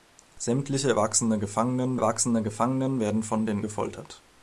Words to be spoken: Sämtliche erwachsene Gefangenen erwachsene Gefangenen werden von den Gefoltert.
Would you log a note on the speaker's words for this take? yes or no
no